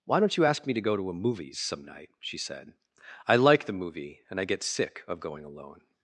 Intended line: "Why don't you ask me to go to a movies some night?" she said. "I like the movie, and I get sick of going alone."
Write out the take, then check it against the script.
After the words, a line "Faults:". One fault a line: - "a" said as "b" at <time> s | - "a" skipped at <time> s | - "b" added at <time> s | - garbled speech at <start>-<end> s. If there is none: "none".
"Why don't you ask me to go to a movies some night?" she said. "I like the movie, and I get sick of going alone."
Faults:
none